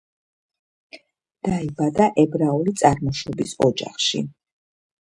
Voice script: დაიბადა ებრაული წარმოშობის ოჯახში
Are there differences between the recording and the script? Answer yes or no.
no